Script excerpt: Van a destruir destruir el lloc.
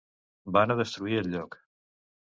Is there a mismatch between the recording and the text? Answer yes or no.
yes